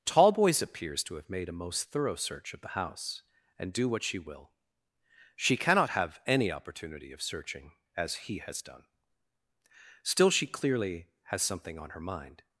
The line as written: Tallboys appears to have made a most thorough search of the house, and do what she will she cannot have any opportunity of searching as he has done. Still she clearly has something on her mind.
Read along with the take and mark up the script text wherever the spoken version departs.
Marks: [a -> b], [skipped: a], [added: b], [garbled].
Tallboys appears to have made a most thorough search of the house, and do what she will she cannot have any opportunity of searching as he has done. Still she clearly has something on her mind.